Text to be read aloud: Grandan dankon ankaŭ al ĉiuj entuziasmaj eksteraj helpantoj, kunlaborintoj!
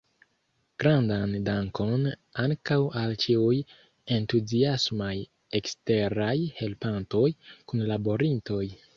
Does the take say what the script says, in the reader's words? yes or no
yes